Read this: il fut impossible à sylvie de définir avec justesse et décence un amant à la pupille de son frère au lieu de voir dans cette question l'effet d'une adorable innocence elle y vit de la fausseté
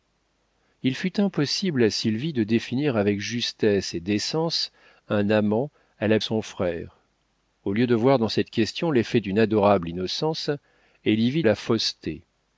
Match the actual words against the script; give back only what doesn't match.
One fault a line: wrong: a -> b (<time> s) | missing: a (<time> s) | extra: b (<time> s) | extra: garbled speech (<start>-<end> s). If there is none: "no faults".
missing: pupille de (6.2 s)
missing: de (11.4 s)